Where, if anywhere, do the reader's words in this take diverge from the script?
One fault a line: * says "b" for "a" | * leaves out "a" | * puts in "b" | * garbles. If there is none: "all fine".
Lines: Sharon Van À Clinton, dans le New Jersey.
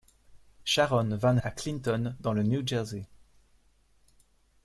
all fine